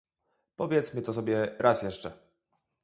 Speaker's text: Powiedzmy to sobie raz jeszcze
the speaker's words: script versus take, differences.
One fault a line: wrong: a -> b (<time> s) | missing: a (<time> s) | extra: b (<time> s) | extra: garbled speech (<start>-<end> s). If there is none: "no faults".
no faults